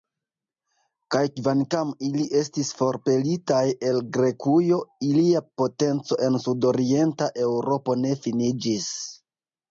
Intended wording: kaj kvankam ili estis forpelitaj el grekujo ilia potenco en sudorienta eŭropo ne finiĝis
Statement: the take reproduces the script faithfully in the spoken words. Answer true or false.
true